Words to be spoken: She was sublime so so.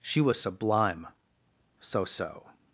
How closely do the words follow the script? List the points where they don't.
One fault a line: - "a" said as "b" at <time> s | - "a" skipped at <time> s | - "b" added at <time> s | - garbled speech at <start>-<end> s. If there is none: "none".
none